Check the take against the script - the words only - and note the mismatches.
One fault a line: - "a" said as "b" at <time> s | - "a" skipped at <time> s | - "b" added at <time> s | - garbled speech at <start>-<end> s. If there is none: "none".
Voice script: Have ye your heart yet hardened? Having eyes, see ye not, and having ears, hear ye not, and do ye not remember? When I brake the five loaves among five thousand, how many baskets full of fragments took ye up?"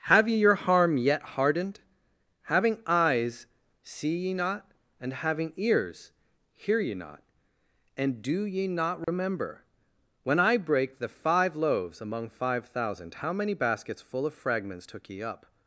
- "heart" said as "harm" at 0.6 s